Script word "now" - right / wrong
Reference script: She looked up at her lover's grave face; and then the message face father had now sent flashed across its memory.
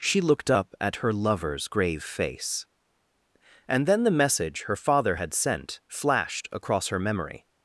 wrong